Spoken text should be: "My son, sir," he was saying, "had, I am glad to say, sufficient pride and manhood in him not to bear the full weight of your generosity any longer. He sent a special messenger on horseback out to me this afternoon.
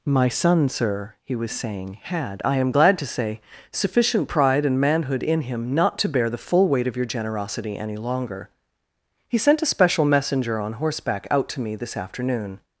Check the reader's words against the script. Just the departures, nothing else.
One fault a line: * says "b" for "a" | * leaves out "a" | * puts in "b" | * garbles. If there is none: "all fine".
all fine